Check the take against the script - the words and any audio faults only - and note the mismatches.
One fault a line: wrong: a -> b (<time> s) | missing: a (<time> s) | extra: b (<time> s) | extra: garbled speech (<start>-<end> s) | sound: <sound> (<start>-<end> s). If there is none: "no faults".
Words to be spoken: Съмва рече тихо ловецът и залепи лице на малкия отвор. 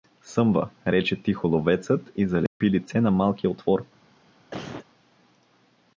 sound: dropout (2.5-2.6 s)
sound: cough (4.5-4.9 s)